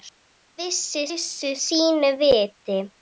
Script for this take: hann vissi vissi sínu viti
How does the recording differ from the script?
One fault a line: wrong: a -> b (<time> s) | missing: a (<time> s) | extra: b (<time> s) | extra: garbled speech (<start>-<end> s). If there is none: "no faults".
no faults